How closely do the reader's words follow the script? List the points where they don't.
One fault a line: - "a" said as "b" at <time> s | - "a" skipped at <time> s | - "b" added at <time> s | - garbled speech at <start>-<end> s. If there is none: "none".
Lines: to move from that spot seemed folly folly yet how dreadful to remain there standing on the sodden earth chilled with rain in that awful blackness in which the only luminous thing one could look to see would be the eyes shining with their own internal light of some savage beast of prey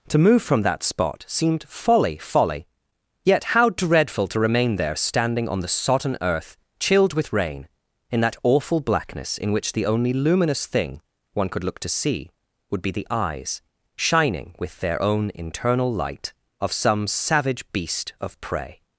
none